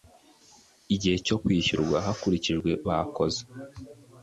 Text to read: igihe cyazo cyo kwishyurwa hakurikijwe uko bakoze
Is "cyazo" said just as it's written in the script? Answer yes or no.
no